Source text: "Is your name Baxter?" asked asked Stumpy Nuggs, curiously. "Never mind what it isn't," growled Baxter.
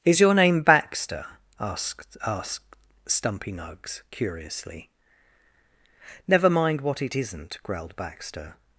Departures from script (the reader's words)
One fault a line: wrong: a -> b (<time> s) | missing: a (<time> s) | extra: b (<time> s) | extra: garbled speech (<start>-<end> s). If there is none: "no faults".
no faults